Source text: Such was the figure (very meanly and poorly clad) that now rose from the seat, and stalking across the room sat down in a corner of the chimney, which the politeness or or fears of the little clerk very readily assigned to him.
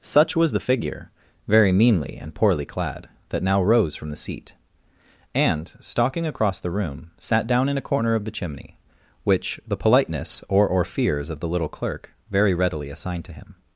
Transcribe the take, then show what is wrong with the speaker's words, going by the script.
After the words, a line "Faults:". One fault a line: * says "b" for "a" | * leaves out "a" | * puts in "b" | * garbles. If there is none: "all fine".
Such was the figure (very meanly and poorly clad) that now rose from the seat, and stalking across the room sat down in a corner of the chimney, which the politeness or or fears of the little clerk very readily assigned to him.
Faults:
all fine